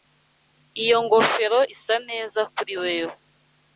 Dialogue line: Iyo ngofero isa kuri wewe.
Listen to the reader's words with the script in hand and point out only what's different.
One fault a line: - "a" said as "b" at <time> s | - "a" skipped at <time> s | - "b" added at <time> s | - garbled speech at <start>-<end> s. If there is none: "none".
- "neza" added at 2.1 s